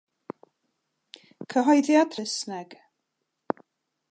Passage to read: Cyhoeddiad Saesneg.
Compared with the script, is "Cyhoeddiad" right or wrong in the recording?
right